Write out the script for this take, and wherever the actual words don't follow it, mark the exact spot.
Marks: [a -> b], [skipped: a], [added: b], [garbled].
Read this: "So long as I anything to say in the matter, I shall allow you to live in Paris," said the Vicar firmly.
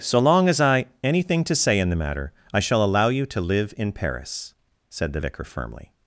"So long as I anything to say in the matter, I shall allow you to live in Paris," said the Vicar firmly.